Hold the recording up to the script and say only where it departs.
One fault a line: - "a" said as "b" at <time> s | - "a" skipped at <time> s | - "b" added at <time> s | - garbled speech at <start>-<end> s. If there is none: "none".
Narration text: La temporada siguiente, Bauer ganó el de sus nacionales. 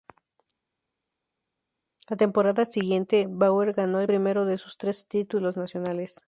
- "primero" added at 4.0 s
- "tres títulos" added at 4.8 s